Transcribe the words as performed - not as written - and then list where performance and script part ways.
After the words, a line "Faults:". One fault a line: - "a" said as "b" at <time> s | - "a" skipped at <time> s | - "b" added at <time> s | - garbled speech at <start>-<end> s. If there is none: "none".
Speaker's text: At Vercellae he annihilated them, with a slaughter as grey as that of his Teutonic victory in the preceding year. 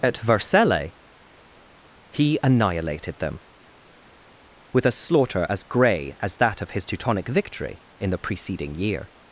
At Vercellae he annihilated them, with a slaughter as grey as that of his Teutonic victory in the preceding year.
Faults:
none